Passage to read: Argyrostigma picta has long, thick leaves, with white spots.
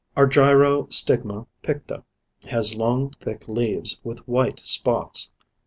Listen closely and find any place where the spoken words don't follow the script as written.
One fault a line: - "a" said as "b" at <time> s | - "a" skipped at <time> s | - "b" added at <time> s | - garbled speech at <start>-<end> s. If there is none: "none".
none